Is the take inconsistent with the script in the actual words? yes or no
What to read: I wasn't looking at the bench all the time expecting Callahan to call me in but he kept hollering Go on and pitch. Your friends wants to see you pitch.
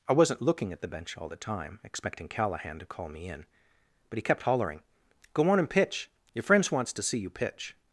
no